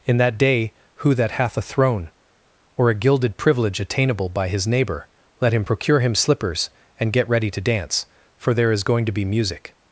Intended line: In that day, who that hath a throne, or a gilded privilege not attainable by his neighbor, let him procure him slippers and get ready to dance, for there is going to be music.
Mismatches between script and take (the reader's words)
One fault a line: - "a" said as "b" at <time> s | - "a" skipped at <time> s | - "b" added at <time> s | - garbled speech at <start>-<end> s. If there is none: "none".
- "not" skipped at 3.8 s